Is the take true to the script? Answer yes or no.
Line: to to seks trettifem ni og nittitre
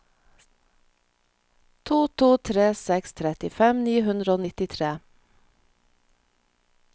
no